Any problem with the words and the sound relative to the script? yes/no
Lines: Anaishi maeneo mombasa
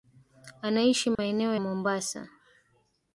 yes